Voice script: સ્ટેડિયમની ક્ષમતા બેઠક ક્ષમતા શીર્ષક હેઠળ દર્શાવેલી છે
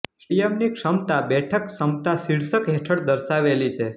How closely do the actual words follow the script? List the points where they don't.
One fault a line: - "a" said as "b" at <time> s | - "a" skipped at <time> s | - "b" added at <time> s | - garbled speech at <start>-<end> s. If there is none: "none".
none